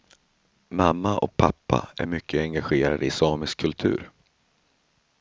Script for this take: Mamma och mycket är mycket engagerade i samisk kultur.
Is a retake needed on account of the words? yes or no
yes